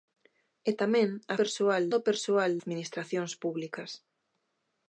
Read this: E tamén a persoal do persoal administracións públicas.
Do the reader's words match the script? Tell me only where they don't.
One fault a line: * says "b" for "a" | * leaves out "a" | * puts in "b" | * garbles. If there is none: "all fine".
all fine